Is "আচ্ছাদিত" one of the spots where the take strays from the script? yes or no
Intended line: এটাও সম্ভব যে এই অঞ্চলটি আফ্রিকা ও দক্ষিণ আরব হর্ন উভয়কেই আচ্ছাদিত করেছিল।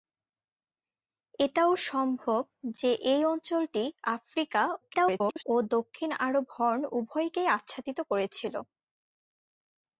no